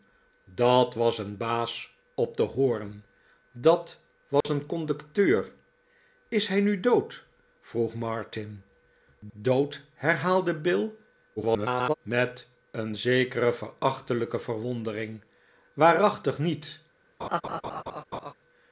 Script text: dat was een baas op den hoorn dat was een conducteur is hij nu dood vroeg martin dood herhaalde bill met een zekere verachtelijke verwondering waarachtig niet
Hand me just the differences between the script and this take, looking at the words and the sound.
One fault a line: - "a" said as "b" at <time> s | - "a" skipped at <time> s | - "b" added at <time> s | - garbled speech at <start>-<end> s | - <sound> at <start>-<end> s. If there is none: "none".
- dropout at 4.4-4.4 s
- garbled speech at 11.4-11.9 s
- laugh at 17.2-18.3 s